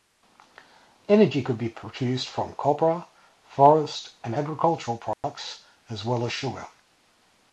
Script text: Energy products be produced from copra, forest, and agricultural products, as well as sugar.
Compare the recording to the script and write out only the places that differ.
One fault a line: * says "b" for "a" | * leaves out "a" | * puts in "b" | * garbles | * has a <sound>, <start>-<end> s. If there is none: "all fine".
* says "could" for "products"
* has a dropout, 5.1-5.2 s